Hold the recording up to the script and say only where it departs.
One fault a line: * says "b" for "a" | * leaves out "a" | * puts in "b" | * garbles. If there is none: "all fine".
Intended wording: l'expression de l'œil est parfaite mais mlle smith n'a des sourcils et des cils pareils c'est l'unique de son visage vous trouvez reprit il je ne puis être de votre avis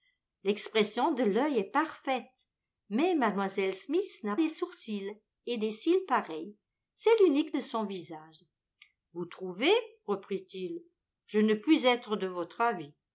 all fine